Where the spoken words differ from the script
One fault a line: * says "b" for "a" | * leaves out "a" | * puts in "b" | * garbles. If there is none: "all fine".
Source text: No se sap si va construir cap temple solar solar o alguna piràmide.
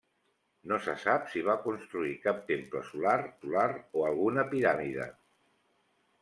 all fine